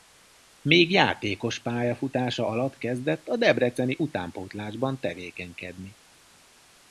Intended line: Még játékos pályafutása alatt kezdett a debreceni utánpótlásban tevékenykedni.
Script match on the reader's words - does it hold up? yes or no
yes